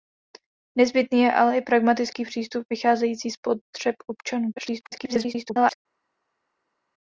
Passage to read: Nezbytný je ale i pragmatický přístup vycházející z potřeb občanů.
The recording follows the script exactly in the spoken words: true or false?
false